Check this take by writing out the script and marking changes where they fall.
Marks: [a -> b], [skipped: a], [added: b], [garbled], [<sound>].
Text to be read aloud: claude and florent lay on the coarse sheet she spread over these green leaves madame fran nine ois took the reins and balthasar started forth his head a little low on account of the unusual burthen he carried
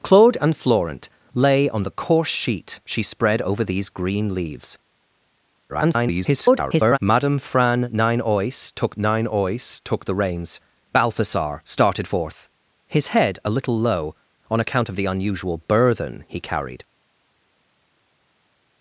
claude and florent lay on the coarse sheet she spread over these green leaves [garbled] madame fran nine ois took [added: nine ois took] the reins [skipped: and] balthasar started forth his head a little low on account of the unusual burthen he carried